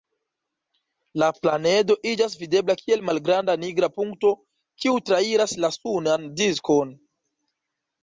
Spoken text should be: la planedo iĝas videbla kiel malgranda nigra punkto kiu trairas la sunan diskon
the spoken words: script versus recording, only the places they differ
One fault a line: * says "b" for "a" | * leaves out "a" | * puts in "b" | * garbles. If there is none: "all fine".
all fine